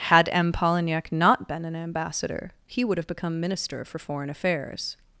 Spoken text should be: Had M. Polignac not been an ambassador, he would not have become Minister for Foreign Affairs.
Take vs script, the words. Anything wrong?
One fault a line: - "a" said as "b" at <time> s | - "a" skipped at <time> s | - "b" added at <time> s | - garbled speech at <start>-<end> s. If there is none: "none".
- "not" skipped at 3.0 s